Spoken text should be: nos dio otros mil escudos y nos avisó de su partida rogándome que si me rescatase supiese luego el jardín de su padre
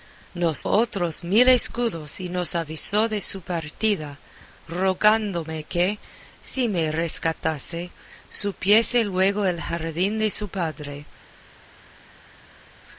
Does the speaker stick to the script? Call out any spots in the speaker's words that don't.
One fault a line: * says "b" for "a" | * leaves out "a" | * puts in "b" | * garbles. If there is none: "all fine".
* leaves out "dio"